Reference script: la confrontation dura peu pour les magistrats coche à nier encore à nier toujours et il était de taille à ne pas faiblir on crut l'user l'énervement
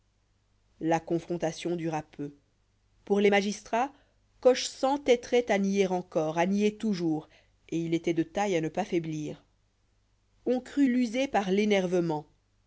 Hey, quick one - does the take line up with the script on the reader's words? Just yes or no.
no